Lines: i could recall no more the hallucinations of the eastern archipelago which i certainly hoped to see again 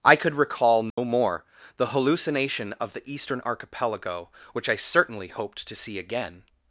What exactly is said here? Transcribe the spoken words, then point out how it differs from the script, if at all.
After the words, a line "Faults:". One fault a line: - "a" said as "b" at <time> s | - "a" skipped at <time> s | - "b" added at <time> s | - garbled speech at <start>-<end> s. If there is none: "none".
i could recall no more the hallucination of the eastern archipelago which i certainly hoped to see again
Faults:
- "hallucinations" said as "hallucination" at 1.9 s